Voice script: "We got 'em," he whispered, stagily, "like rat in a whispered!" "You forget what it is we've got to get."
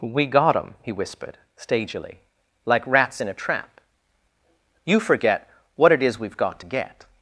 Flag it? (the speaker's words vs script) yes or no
yes